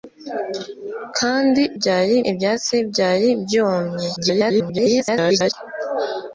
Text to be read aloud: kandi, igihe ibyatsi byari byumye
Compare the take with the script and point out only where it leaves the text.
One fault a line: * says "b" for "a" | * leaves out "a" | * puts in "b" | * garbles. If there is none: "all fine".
* says "byari" for "igihe"
* garbles